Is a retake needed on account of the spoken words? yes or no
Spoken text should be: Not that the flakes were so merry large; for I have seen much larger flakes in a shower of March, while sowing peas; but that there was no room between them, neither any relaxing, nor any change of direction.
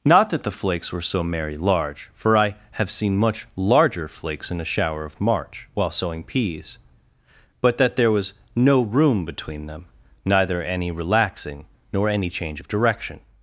no